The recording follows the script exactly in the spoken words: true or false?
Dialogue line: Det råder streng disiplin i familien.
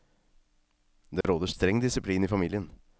true